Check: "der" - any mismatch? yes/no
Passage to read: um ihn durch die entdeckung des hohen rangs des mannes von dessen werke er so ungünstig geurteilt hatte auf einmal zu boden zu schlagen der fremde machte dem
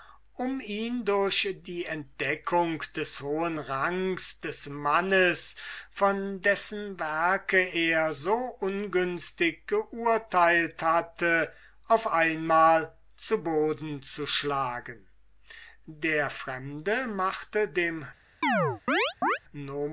no